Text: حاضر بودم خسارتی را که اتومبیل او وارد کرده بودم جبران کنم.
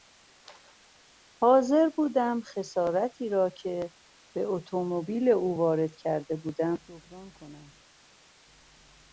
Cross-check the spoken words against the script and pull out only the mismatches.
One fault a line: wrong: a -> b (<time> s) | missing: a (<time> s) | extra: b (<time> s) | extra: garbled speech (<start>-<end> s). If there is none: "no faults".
extra: به (4.3 s)